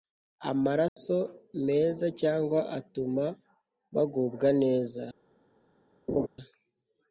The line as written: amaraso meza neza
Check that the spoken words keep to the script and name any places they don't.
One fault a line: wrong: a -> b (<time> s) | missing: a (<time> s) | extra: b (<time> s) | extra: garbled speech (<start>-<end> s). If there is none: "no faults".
extra: cyangwa atuma bagubwa (2.2 s)